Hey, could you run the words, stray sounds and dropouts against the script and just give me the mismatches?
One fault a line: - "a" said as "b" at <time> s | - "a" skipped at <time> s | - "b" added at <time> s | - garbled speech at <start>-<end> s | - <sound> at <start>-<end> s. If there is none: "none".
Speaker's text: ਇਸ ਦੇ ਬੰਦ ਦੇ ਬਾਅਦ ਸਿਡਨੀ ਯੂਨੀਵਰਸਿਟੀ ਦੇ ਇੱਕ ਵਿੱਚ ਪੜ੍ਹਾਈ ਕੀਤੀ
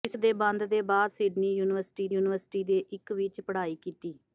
- "ਯੂਨੀਵਰਸਿਟੀ" added at 2.1 s